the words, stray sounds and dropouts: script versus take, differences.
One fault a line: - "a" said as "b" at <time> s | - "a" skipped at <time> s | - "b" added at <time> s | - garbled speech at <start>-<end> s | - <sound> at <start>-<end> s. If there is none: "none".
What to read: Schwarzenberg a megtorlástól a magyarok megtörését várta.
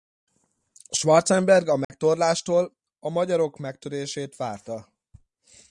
- dropout at 1.8-1.9 s